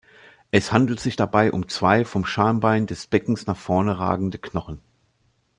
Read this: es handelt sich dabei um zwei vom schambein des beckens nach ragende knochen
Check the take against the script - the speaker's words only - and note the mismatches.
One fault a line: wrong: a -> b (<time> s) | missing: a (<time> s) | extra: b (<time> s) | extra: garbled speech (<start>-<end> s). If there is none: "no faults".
extra: vorne (3.6 s)